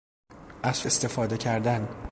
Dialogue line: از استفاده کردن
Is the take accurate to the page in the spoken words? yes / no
yes